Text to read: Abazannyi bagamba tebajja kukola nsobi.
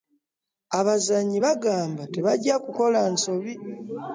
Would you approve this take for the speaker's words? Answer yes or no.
yes